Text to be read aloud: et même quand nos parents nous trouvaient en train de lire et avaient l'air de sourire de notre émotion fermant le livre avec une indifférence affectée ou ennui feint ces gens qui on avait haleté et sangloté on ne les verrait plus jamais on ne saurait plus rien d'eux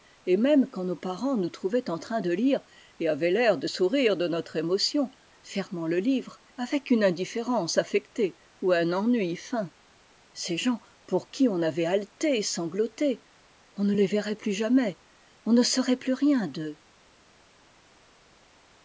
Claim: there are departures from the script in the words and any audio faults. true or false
true